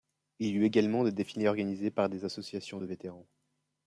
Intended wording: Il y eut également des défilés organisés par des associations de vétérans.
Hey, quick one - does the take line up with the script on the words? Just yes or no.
yes